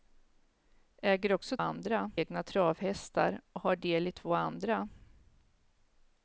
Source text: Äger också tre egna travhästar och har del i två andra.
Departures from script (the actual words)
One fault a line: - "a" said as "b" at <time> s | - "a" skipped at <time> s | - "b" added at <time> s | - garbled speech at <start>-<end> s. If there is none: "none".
- "tre" said as "andra" at 1.6 s